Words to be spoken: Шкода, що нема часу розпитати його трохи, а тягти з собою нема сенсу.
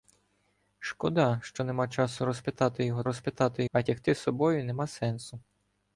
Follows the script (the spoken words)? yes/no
no